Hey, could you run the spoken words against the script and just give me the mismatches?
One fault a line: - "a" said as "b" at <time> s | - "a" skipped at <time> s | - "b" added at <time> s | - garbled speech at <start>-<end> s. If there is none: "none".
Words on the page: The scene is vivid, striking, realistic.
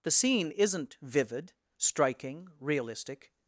- "is" said as "isn't" at 0.5 s